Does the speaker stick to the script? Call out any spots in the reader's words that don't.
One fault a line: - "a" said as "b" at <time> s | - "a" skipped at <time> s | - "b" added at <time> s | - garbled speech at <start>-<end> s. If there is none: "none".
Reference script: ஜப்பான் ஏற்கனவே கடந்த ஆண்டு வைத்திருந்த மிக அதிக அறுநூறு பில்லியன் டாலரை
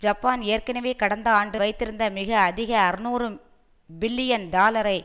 none